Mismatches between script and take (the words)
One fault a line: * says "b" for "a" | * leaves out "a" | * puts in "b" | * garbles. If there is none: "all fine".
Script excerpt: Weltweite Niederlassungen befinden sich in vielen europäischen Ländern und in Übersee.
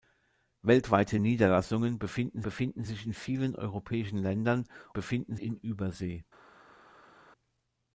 * puts in "befinden"
* says "befinden" for "und"